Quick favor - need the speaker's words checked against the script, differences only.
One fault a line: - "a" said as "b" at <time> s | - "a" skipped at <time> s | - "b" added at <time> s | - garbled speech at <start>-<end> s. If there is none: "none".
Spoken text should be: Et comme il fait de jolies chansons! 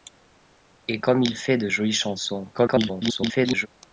- garbled speech at 2.5-3.7 s